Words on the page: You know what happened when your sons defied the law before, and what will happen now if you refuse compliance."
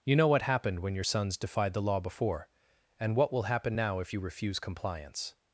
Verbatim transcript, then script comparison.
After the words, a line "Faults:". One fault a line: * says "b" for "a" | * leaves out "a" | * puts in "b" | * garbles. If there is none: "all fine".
You know what happened when your sons defied the law before, and what will happen now if you refuse compliance."
Faults:
all fine